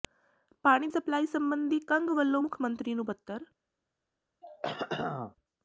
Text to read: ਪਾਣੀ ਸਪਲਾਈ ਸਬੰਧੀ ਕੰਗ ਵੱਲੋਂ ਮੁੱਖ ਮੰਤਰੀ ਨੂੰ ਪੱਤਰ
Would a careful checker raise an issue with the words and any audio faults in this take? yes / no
yes